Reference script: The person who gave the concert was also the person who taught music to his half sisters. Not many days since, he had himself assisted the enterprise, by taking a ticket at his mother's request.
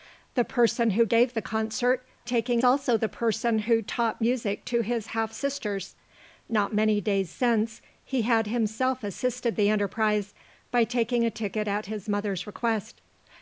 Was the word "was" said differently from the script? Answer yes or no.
yes